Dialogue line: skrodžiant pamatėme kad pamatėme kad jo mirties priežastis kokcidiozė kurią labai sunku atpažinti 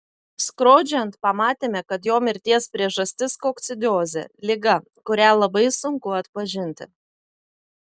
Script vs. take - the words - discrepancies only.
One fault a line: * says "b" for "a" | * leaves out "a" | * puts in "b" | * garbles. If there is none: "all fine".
* leaves out "pamatėme kad"
* puts in "liga"